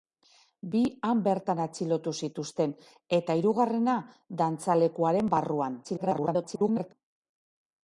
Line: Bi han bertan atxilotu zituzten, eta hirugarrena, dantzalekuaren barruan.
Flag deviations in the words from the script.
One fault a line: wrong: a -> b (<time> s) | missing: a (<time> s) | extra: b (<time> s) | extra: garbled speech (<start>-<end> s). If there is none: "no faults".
extra: garbled speech (5.8-6.9 s)